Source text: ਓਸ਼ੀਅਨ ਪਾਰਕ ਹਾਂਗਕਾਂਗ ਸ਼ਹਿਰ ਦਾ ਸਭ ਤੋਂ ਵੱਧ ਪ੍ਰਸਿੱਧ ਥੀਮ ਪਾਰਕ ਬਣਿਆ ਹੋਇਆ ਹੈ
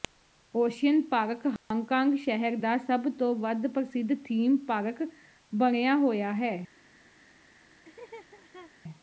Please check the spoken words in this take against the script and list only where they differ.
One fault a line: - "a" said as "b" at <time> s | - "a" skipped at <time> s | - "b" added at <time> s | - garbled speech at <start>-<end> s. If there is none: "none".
none